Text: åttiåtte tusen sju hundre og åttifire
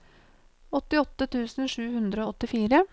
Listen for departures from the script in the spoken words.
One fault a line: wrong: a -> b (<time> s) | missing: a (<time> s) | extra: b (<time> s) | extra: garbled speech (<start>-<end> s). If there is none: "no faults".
no faults